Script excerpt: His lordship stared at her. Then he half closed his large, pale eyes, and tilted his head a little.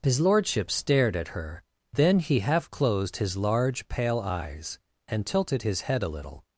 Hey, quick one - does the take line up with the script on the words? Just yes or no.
yes